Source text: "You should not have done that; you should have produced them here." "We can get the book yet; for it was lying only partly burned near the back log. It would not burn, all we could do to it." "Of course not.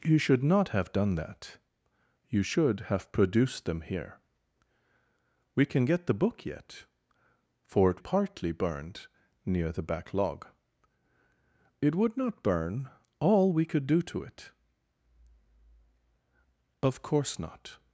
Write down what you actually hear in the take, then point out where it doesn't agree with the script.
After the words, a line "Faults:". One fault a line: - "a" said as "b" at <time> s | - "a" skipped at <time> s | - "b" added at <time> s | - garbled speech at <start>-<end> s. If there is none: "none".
"You should not have done that; you should have produced them here." "We can get the book yet; for it partly burned near the back log. It would not burn, all we could do to it." "Of course not.
Faults:
- "was lying only" skipped at 8.0 s